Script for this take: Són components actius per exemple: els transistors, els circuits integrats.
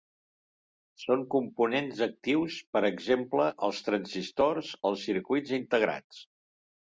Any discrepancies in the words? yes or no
no